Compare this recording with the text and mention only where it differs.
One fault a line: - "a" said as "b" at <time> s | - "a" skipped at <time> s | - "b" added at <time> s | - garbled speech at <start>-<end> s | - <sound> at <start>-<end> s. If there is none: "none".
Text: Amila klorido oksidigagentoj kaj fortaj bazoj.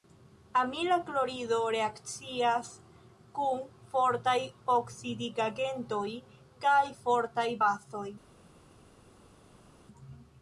- "reakcias kun fortaj" added at 1.8 s